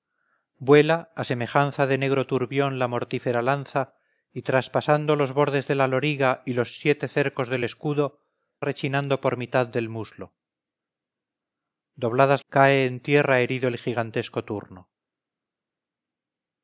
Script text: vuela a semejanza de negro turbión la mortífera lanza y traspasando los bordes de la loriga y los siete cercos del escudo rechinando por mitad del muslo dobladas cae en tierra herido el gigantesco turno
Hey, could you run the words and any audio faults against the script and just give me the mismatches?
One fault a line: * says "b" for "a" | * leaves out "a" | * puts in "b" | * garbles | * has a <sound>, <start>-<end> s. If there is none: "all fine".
all fine